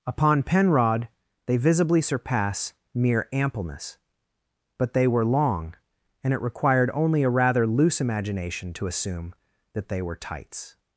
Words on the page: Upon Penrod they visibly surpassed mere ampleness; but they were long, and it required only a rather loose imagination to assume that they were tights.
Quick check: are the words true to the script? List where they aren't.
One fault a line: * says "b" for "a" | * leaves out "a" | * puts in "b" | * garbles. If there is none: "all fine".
* says "surpass" for "surpassed"